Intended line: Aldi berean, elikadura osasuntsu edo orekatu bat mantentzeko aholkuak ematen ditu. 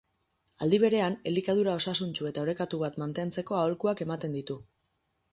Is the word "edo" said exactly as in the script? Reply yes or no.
no